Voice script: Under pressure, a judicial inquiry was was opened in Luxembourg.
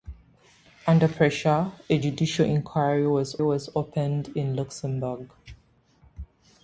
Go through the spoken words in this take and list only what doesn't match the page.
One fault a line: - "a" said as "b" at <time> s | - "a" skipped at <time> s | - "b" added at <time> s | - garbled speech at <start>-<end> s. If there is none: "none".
none